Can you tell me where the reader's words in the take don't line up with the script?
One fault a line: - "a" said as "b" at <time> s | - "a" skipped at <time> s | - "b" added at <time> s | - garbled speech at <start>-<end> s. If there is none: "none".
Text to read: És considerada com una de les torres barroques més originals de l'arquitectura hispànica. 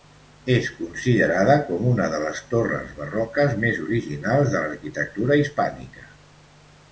none